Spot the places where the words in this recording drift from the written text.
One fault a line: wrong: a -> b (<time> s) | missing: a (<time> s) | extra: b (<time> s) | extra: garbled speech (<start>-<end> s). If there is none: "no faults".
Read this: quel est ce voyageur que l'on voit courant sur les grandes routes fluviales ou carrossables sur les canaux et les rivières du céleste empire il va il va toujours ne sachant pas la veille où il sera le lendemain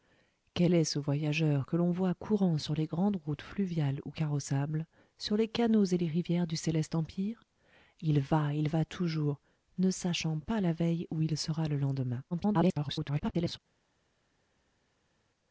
extra: garbled speech (12.3-13.6 s)